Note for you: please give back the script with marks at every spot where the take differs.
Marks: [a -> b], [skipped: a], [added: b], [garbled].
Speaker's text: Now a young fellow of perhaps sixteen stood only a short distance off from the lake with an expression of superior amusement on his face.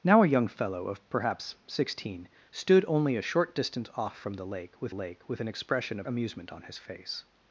Now a young fellow of perhaps sixteen stood only a short distance off from the lake with [added: lake with] an expression of [skipped: superior] amusement on his face.